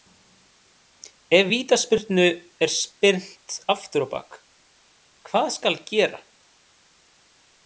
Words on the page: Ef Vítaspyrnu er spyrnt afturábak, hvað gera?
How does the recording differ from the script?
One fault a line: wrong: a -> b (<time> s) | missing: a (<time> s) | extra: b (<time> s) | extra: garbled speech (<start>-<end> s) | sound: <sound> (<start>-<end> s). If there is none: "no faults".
extra: skal (5.6 s)